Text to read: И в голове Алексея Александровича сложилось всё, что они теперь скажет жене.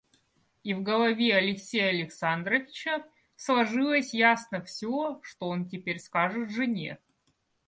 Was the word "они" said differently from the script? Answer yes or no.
yes